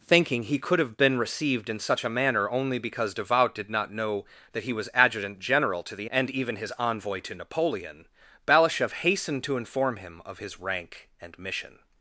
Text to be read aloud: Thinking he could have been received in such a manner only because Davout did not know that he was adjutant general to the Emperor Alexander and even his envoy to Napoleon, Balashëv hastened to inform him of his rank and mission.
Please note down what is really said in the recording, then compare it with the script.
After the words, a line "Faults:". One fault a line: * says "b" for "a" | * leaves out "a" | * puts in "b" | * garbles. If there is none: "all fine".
Thinking he could have been received in such a manner only because Davout did not know that he was adjutant general to the And even his envoy to Napoleon, Balashëv hastened to inform him of his rank and mission.
Faults:
* leaves out "Emperor Alexander"